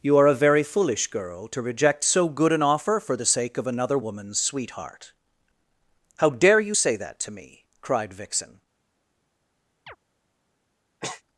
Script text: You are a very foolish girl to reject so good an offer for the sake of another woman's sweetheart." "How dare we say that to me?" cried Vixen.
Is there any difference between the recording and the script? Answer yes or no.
yes